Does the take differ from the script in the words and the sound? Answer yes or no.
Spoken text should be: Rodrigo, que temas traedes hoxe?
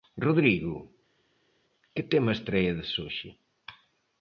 no